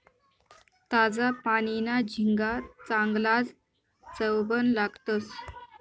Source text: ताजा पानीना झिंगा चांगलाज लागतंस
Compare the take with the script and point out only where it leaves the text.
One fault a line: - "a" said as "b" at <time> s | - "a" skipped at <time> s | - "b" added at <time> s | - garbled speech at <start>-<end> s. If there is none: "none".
- "चवबन" added at 4.0 s